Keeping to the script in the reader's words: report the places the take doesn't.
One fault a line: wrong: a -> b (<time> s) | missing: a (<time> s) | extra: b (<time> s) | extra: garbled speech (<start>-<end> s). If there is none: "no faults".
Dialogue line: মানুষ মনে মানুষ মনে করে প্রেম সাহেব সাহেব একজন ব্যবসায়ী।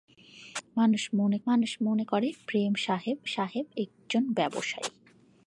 no faults